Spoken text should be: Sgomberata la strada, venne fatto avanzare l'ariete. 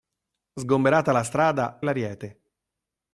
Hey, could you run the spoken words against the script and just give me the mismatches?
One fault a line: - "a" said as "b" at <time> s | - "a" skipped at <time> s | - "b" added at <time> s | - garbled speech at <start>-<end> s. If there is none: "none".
- "venne fatto avanzare" skipped at 1.8 s